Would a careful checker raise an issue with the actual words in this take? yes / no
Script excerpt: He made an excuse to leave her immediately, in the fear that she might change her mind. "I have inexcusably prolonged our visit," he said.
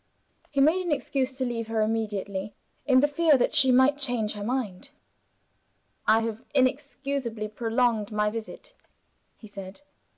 yes